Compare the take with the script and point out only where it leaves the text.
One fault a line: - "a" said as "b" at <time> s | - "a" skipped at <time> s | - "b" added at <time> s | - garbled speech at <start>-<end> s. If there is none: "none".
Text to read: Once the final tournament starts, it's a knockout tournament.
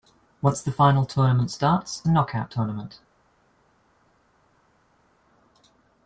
- "it's" skipped at 2.0 s